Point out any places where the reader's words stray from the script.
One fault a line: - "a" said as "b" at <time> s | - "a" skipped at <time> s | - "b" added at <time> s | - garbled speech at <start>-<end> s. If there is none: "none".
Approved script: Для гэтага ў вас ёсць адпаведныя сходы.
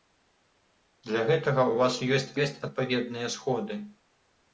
- "ёсць" added at 2.4 s